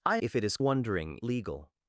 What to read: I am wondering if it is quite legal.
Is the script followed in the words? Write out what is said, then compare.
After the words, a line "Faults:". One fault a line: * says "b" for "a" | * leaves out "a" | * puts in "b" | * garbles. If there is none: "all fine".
I if it is wondering legal.
Faults:
* leaves out "am wondering"
* says "wondering" for "quite"